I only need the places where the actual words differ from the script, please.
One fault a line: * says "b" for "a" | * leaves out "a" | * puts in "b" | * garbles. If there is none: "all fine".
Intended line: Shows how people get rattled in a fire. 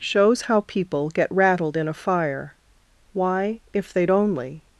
* puts in "Why if they'd only"